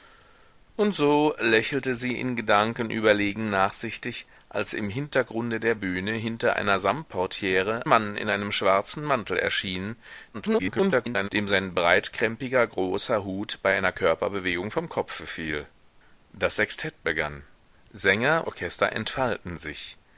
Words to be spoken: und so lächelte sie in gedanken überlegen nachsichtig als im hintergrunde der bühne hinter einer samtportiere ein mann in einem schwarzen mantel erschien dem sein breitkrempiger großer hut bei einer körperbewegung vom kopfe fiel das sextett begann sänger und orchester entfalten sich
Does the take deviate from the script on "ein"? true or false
true